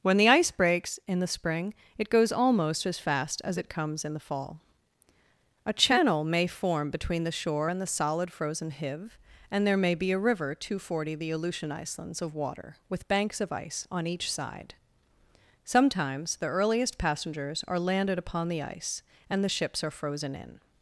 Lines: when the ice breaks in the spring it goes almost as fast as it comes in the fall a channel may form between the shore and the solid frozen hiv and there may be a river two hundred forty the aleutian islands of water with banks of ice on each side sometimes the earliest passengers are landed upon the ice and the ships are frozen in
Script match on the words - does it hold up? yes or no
yes